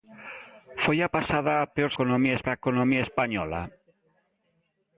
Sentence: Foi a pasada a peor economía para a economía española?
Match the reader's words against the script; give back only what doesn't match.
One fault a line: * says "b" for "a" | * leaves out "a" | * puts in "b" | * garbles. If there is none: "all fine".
all fine